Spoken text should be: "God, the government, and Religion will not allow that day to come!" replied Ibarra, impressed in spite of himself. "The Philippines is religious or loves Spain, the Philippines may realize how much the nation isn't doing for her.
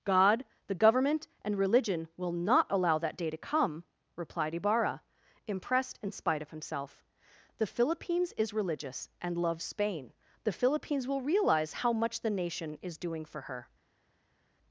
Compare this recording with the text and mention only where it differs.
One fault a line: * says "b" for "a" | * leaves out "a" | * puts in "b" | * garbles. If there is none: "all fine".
* says "and" for "or"
* says "will" for "may"
* says "is" for "isn't"